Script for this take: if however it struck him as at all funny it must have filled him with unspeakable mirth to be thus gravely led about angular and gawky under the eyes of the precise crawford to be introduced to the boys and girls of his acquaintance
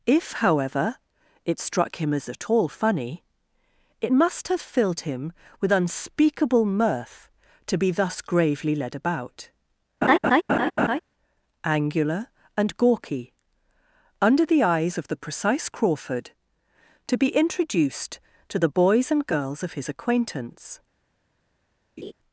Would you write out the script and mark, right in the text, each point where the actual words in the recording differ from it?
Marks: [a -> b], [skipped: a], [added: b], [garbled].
if however it struck him as at all funny it must have filled him with unspeakable mirth to be thus gravely led about angular and gawky under the eyes of the precise crawford to be introduced to the boys and girls of his acquaintance